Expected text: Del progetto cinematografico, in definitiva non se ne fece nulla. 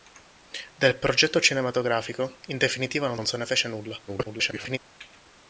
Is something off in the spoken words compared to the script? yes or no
yes